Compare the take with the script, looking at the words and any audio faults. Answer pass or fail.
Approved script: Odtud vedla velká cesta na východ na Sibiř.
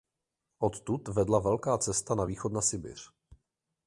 pass